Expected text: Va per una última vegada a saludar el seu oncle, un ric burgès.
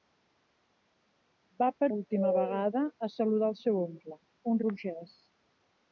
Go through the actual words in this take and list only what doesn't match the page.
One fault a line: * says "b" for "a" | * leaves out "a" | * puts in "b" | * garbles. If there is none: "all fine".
* leaves out "una"
* leaves out "ric"